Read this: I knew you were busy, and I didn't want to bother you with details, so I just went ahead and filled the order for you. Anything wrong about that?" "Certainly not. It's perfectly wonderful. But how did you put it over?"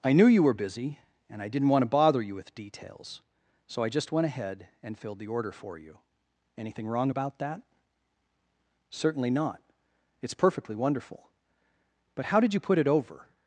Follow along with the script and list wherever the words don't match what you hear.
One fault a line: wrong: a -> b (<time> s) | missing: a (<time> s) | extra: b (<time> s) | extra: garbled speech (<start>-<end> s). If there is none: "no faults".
no faults